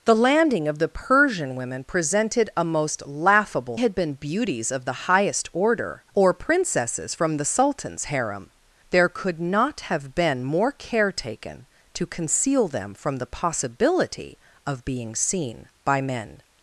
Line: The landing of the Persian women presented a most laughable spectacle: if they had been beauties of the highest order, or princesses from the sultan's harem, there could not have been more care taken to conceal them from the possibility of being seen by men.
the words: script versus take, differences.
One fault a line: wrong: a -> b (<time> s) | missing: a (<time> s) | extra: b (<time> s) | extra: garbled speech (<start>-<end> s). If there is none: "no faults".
missing: spectacle if they (3.8 s)